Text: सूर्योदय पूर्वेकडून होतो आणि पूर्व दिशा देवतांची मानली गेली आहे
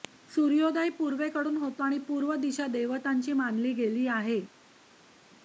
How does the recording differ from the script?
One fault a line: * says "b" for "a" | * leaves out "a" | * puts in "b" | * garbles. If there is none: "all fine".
all fine